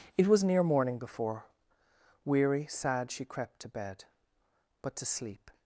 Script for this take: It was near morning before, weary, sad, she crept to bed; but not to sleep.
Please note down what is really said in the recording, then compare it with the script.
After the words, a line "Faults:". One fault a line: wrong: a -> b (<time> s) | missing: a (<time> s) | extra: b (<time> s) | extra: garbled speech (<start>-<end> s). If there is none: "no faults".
It was near morning before, weary, sad, she crept to bed; but to sleep.
Faults:
missing: not (5.0 s)